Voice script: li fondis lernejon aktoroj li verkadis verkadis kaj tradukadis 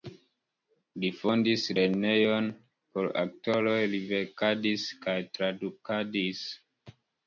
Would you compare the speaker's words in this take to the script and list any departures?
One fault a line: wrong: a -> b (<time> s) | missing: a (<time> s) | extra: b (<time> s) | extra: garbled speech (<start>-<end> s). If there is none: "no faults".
extra: por (3.0 s)
missing: verkadis (4.9 s)